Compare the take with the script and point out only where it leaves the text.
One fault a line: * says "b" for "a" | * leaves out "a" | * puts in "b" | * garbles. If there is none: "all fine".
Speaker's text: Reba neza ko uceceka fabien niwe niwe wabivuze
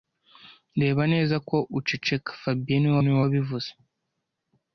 all fine